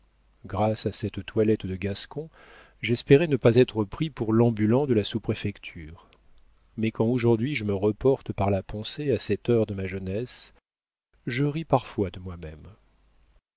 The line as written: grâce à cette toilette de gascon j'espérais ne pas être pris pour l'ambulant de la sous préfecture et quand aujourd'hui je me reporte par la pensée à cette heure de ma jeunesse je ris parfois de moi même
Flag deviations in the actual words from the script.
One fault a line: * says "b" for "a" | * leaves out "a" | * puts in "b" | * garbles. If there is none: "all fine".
* says "mais" for "et"